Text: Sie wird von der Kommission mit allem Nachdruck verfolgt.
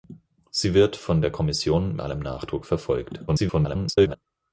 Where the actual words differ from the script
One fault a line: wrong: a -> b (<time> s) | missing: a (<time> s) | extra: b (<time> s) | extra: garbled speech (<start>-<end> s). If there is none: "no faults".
missing: mit (2.0 s)
extra: garbled speech (3.3-4.2 s)